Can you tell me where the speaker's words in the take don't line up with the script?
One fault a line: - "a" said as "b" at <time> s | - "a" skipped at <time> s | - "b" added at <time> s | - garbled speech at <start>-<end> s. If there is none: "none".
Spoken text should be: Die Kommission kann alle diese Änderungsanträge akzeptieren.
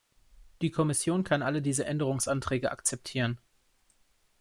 none